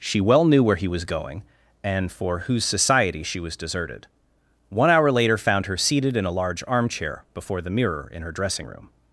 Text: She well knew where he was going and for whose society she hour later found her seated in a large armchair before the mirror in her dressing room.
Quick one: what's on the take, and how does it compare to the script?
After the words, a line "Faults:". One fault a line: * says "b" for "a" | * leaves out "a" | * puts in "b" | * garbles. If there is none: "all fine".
She well knew where he was going and for whose society she was deserted. One hour later found her seated in a large armchair before the mirror in her dressing room.
Faults:
* puts in "was deserted One"